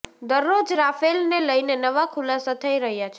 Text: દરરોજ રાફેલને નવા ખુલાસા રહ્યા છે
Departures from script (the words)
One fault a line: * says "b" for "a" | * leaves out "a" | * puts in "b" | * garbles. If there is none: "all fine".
* puts in "લઈને"
* puts in "થઈ"